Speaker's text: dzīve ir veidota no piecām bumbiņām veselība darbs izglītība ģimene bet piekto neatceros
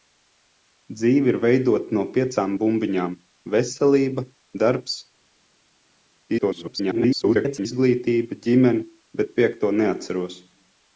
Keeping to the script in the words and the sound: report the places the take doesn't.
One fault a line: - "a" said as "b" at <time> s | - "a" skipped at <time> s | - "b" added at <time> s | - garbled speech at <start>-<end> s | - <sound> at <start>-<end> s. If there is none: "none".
- garbled speech at 6.4-7.7 s